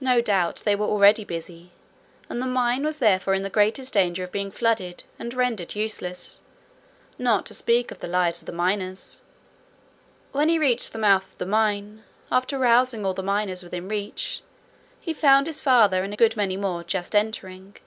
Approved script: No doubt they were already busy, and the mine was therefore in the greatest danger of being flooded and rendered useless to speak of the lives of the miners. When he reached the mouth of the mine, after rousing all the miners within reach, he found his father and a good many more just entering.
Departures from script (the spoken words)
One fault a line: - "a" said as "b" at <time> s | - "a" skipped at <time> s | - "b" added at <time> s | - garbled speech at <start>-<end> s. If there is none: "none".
- "not" added at 7.2 s